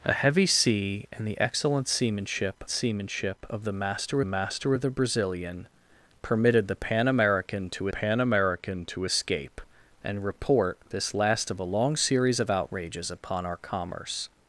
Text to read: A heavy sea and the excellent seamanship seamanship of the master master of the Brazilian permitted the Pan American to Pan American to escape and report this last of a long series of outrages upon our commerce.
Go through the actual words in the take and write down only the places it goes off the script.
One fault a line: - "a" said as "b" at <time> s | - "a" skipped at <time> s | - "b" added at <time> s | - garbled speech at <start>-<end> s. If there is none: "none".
none